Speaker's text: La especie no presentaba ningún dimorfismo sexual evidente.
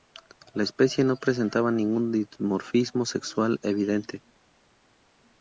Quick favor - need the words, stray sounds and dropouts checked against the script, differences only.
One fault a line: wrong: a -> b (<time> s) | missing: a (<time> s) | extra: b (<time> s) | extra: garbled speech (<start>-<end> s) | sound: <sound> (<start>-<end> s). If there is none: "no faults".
no faults